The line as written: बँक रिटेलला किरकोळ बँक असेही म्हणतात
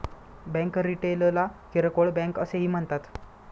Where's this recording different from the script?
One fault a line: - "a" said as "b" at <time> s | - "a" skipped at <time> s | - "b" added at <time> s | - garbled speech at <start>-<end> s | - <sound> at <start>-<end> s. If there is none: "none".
none